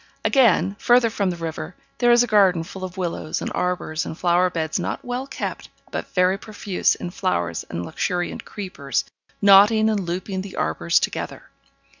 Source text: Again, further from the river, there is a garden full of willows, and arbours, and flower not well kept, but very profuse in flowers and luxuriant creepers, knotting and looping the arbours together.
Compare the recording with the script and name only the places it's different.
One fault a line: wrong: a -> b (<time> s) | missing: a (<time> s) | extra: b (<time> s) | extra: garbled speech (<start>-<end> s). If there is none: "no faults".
extra: beds (4.5 s)